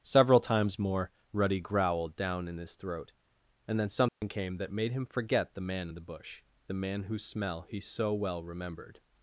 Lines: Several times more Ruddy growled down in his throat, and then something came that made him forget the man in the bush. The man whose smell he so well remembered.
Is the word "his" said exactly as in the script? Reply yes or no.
yes